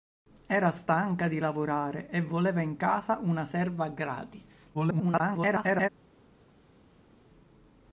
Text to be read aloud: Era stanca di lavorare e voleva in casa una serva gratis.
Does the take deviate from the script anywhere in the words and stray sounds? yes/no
yes